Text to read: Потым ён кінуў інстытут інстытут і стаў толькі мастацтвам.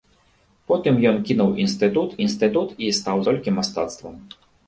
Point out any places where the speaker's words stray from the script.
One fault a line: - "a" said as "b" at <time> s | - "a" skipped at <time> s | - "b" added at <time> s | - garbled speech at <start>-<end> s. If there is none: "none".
none